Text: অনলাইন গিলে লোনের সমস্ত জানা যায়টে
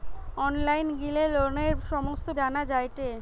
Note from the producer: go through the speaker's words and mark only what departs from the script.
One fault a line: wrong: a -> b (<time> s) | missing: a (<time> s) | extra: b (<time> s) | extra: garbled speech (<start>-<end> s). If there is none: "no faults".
no faults